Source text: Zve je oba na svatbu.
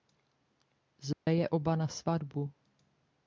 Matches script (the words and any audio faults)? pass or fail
fail